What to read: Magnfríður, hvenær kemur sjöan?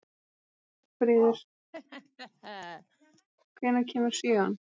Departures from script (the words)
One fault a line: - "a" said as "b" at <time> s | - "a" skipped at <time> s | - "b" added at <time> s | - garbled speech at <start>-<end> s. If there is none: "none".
none